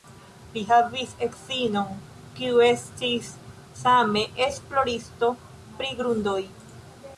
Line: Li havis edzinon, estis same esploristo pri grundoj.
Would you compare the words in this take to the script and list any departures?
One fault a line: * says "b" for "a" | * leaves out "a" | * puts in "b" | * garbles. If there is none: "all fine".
* puts in "kiu"